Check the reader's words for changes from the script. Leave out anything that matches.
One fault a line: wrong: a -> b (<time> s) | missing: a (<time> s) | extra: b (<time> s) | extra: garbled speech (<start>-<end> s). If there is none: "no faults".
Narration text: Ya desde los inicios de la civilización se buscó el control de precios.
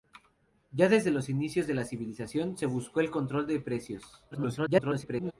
extra: garbled speech (4.3-5.3 s)